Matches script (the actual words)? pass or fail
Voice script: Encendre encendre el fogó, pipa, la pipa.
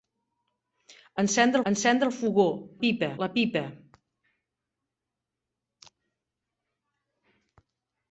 pass